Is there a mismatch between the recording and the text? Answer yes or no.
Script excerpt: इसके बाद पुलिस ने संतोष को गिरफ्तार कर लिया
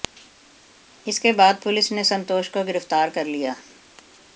no